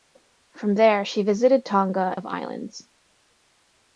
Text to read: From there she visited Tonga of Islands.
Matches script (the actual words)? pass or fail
pass